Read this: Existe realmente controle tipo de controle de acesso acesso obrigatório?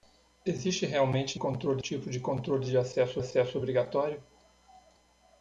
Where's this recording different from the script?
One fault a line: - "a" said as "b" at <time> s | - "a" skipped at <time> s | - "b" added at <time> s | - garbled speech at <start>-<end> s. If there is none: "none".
none